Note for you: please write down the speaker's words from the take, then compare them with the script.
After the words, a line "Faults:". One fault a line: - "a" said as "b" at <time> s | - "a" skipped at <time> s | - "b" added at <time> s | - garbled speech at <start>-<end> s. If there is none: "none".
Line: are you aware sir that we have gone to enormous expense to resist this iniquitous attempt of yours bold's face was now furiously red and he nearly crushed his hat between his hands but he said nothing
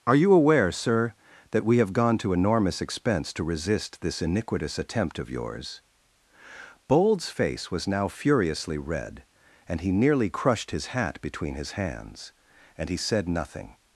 are you aware sir that we have gone to enormous expense to resist this iniquitous attempt of yours bold's face was now furiously red and he nearly crushed his hat between his hands and he said nothing
Faults:
- "but" said as "and" at 12.8 s